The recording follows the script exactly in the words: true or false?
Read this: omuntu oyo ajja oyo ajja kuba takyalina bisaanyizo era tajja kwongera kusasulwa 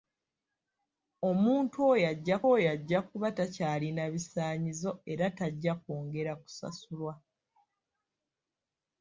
true